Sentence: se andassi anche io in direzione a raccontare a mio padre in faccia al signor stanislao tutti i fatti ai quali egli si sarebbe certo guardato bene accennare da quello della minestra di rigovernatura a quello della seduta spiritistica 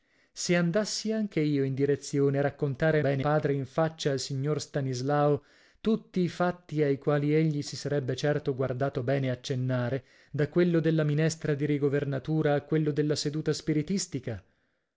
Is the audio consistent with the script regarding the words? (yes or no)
no